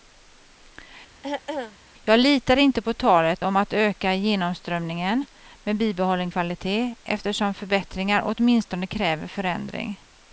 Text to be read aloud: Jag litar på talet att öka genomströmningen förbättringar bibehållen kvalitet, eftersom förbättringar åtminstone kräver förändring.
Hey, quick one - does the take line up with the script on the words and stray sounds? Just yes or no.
no